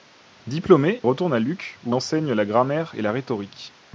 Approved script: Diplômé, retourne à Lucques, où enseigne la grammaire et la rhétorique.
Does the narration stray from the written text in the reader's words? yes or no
no